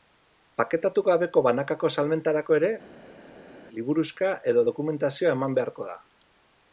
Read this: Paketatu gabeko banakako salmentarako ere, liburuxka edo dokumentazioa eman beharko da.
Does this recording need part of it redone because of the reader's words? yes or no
no